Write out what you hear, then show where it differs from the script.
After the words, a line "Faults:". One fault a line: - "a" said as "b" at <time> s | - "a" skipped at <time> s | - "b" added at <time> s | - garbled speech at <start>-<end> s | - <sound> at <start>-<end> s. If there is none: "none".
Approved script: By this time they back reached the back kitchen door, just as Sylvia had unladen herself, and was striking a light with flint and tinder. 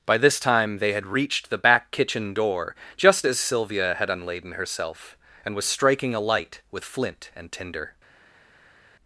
By this time they had reached the back kitchen door, just as Sylvia had unladen herself, and was striking a light with flint and tinder.
Faults:
- "back" said as "had" at 0.9 s